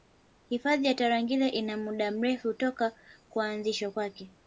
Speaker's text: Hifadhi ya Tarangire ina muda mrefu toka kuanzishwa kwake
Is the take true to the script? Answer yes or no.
yes